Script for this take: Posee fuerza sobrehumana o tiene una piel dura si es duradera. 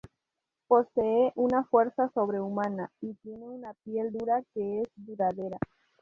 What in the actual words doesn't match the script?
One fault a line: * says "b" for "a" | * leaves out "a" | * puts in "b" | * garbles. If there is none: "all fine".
* puts in "una"
* says "y" for "o"
* says "que" for "si"